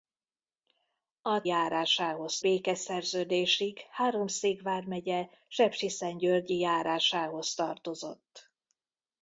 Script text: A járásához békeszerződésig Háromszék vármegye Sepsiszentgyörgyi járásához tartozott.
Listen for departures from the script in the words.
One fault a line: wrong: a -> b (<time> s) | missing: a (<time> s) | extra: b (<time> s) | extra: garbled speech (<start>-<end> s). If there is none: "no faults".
no faults